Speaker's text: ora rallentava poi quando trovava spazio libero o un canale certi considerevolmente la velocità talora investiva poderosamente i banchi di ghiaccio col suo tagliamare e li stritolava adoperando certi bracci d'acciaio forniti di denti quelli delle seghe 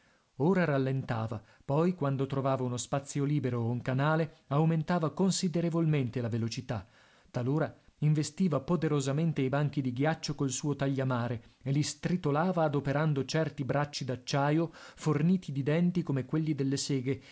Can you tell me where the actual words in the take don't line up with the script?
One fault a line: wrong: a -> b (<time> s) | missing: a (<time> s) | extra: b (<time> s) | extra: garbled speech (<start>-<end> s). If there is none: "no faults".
extra: uno (2.6 s)
wrong: certi -> aumentava (4.5 s)
extra: come (16.0 s)